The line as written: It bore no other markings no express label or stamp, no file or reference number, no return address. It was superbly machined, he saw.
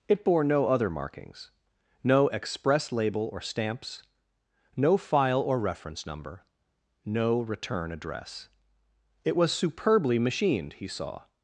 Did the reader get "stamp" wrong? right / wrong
wrong